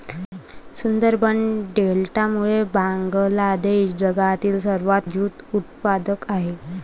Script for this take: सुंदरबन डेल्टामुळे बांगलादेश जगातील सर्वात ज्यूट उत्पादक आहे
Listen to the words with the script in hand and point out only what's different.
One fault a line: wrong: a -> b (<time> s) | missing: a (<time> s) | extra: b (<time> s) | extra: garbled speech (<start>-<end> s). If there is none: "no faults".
no faults